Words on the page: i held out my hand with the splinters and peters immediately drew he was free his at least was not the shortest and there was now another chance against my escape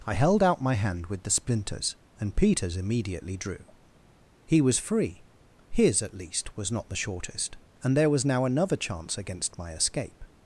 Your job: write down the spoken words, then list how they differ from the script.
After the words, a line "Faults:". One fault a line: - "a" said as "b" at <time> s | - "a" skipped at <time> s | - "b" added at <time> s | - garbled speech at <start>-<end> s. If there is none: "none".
i held out my hand with the splinters and peters immediately drew he was free his at least was not the shortest and there was now another chance against my escape
Faults:
none